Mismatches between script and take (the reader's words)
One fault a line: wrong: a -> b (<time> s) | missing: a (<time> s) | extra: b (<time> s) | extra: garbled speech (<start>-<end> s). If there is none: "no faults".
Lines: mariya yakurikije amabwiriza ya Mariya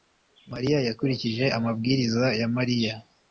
no faults